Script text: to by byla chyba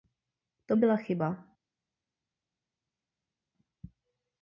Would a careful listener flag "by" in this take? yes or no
yes